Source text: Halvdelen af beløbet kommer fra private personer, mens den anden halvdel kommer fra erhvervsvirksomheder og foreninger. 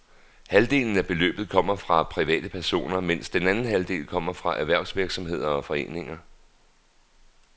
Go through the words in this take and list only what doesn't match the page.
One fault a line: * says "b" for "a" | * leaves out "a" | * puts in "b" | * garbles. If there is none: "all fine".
all fine